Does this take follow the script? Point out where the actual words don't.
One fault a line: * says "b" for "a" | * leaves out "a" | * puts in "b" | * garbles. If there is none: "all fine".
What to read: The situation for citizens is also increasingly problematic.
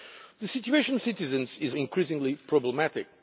* leaves out "for"
* leaves out "also"